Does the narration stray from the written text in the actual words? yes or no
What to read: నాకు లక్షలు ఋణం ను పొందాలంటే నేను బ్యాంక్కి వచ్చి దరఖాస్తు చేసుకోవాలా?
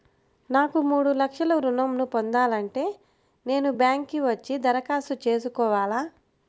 yes